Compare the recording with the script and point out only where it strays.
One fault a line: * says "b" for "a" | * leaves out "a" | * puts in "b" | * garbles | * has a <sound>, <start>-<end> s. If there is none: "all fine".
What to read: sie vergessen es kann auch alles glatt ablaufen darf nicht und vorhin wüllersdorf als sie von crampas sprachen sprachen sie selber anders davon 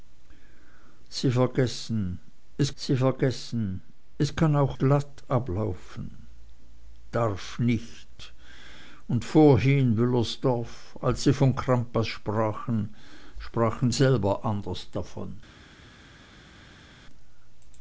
* puts in "sie vergessen es"
* leaves out "alles"
* leaves out "sie"